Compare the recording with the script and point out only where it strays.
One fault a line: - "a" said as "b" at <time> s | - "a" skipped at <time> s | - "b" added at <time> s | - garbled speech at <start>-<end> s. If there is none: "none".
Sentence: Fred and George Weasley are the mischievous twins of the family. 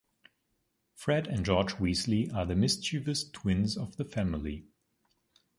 none